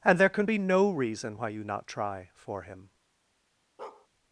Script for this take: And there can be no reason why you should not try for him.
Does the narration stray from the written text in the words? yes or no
yes